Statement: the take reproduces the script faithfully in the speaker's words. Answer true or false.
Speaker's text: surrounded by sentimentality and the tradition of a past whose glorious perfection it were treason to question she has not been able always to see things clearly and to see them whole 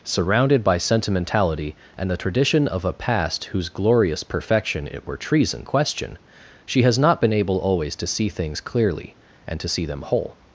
false